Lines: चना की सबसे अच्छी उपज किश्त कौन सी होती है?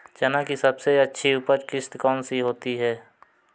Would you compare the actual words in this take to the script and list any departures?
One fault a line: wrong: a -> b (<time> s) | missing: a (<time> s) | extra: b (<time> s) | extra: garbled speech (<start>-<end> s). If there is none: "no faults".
no faults